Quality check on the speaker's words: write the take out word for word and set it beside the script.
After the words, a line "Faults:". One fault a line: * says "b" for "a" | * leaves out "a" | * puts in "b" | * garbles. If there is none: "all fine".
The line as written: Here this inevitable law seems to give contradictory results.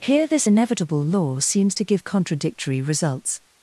Here this inevitable law seems to give contradictory results.
Faults:
all fine